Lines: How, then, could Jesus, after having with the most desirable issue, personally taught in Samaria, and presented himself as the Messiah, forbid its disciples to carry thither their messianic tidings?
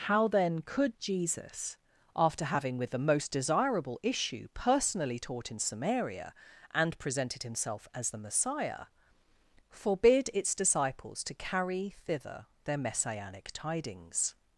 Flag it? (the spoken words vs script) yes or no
no